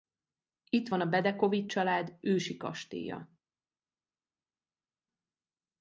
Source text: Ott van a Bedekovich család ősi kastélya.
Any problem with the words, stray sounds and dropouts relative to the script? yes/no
yes